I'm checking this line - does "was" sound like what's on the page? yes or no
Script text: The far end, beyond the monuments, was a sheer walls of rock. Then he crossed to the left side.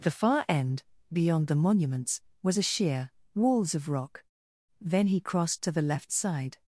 yes